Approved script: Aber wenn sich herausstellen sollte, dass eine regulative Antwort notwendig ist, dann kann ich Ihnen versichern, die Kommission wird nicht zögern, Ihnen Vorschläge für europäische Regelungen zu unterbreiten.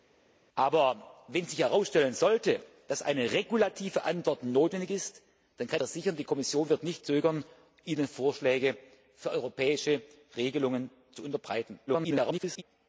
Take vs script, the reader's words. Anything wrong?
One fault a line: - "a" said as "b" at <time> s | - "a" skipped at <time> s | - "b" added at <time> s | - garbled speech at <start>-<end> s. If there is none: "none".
- "ich Ihnen" skipped at 5.8 s
- garbled speech at 11.9-12.6 s